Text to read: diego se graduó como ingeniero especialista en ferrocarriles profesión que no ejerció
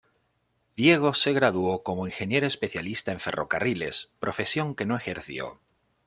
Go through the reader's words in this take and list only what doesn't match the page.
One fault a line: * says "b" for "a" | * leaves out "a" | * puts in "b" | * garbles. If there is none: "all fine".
all fine